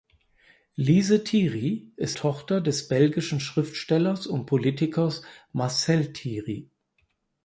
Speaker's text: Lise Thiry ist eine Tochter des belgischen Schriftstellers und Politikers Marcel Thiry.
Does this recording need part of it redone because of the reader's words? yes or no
yes